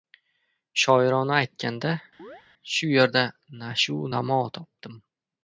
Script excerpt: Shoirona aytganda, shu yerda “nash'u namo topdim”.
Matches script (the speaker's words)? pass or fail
pass